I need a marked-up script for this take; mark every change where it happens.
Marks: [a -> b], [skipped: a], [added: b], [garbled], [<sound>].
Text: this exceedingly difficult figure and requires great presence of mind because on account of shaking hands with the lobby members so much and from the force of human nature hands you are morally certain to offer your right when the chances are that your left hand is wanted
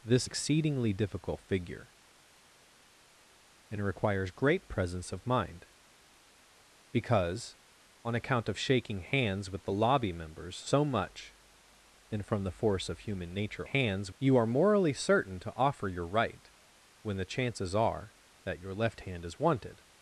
this exceedingly difficult figure and requires great presence of mind because on account of shaking hands with the lobby members so much and from the force of human nature hands you are morally certain to offer your right when the chances are that your left hand is wanted